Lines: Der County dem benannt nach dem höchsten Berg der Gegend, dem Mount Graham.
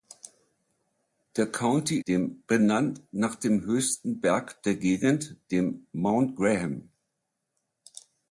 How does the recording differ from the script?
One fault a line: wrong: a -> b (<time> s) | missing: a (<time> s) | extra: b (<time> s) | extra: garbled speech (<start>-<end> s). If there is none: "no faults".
no faults